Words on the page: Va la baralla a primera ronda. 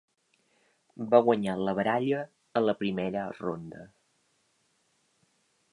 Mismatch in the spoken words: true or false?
true